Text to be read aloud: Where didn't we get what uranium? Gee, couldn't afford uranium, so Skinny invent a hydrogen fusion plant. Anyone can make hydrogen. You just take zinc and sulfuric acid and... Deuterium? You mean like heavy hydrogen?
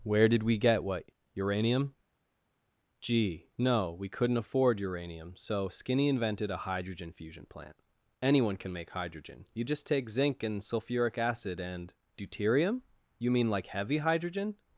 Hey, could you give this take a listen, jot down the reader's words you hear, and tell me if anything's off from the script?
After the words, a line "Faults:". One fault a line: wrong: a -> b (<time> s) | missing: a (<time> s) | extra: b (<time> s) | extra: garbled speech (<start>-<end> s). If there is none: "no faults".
Where did we get what uranium? Gee, no, we couldn't afford uranium, so Skinny invented a hydrogen fusion plant. Anyone can make hydrogen. You just take zinc and sulfuric acid and... Deuterium? You mean like heavy hydrogen?
Faults:
wrong: didn't -> did (0.3 s)
extra: no we (3.6 s)
wrong: invent -> invented (6.1 s)